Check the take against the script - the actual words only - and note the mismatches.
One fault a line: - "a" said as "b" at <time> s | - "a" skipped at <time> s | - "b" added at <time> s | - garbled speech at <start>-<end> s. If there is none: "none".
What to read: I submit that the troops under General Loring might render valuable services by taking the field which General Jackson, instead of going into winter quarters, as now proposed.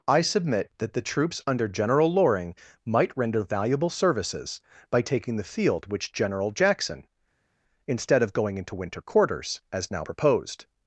none